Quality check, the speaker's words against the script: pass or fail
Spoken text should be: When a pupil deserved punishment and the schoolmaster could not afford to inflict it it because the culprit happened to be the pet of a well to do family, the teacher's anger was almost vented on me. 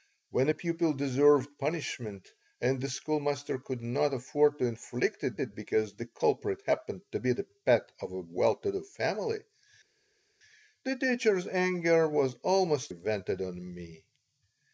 pass